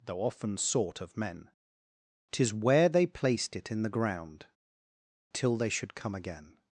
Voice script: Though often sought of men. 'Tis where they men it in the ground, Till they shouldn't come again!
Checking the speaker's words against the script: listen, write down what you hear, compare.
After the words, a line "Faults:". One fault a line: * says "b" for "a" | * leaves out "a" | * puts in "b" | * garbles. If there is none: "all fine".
Though often sought of men. 'Tis where they placed it in the ground, Till they should come again!
Faults:
* says "placed" for "men"
* says "should" for "shouldn't"